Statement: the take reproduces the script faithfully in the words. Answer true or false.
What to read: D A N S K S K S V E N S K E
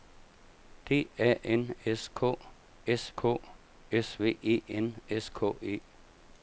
true